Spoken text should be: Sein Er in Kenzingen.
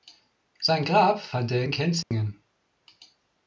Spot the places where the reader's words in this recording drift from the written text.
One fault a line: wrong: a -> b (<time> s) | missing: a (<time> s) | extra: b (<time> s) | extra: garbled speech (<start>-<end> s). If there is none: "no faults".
extra: Grab fand (0.8 s)